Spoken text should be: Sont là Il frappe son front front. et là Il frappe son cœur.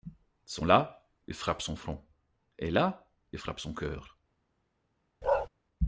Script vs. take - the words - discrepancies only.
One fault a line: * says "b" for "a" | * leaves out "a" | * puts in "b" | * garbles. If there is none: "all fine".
* leaves out "front"